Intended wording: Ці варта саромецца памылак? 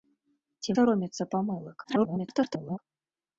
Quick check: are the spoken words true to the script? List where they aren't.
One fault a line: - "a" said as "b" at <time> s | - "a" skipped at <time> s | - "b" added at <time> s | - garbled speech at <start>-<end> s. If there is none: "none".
- "варта" skipped at 0.7 s
- garbled speech at 1.8-2.8 s